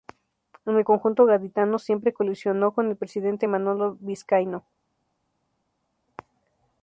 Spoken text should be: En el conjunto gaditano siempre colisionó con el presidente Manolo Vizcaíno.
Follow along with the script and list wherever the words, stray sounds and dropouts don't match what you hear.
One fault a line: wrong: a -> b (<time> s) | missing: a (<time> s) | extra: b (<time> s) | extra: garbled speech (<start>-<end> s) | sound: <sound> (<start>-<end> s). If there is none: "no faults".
no faults